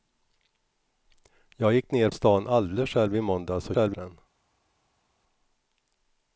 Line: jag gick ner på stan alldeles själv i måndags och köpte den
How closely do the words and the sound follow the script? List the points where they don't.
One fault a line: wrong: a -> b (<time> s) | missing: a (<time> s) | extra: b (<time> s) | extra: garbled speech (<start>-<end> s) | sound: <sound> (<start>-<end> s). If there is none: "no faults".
missing: på (2.1 s)
wrong: köpte -> själv (3.7 s)